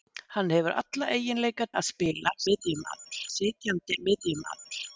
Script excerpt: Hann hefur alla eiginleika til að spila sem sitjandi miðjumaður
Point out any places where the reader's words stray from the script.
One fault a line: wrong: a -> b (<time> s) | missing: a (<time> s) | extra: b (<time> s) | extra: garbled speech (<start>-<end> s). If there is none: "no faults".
missing: til (1.7 s)
wrong: sem -> miðjumaður (2.5 s)